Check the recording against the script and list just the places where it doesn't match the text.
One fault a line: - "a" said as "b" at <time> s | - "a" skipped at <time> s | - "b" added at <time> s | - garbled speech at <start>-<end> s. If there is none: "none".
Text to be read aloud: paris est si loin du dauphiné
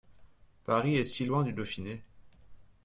none